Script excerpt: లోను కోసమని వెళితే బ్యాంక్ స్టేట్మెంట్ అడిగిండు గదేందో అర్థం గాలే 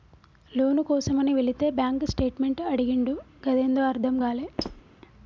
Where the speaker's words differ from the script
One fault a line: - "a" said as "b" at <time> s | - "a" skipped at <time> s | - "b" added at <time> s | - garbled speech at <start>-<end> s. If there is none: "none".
none